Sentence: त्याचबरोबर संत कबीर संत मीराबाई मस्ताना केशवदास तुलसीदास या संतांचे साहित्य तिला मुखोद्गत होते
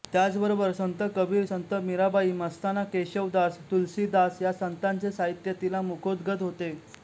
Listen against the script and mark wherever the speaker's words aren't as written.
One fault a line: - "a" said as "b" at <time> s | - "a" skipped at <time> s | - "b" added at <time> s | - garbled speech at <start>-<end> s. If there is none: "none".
none